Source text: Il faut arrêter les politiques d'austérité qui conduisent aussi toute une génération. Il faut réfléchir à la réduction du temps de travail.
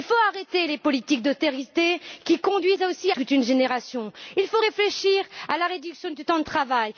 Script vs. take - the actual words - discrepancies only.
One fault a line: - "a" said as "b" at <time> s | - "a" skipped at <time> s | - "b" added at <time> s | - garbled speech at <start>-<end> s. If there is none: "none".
none